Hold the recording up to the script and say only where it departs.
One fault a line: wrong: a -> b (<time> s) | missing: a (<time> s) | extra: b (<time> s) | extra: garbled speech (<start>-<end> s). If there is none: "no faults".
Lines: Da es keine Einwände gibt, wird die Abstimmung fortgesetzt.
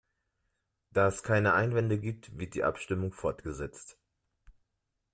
no faults